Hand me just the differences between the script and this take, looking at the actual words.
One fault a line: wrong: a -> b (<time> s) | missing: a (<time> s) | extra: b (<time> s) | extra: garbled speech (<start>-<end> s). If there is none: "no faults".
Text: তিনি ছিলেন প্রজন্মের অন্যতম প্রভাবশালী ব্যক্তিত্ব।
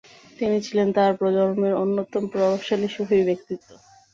extra: তাঁর (1.0 s)
extra: সুফি (2.9 s)